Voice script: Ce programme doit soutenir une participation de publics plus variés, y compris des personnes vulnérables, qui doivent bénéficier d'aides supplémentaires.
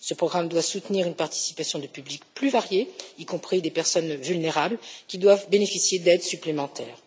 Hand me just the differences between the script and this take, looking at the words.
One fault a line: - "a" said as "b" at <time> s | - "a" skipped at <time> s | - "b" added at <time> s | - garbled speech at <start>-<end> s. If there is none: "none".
none